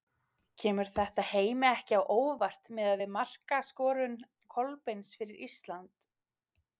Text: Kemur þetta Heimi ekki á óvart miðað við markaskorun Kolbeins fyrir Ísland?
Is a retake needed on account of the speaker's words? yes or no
no